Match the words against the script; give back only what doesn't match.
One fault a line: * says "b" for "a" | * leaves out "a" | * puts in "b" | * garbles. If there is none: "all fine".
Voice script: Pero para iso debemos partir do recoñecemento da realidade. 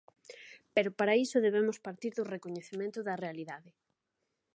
all fine